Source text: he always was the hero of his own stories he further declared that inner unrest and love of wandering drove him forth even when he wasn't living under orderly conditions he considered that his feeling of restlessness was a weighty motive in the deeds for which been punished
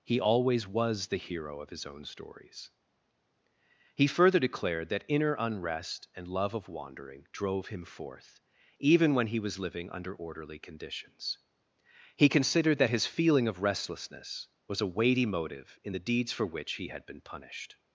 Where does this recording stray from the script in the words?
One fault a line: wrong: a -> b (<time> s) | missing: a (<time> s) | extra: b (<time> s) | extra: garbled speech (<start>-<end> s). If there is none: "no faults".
wrong: wasn't -> was (9.4 s)
extra: he had (16.7 s)